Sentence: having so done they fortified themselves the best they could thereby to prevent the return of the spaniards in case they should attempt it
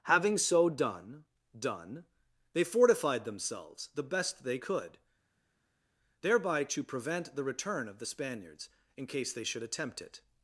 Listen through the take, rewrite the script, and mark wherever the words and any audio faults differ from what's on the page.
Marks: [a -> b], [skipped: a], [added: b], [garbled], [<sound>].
having so done [added: done] they fortified themselves the best they could thereby to prevent the return of the spaniards in case they should attempt it